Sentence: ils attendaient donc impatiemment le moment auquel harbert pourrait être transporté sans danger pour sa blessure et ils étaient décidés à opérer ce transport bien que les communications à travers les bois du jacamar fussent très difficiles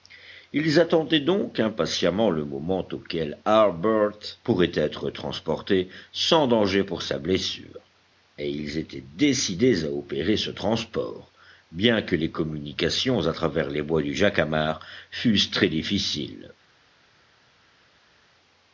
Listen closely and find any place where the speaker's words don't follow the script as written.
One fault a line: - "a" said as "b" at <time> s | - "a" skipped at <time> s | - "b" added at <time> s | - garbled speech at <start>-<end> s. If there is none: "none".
none